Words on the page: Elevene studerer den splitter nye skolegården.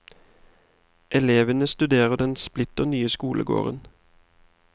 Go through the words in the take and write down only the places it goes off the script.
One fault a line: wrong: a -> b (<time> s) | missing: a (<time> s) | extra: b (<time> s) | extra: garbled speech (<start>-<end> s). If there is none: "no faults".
no faults